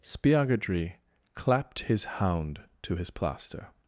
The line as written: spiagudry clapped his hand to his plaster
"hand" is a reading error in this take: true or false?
true